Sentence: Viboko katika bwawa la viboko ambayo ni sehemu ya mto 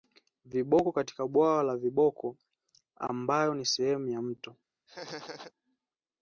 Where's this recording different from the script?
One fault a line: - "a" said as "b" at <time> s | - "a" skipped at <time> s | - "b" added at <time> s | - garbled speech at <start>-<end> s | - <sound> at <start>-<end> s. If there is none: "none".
- laugh at 4.9-5.5 s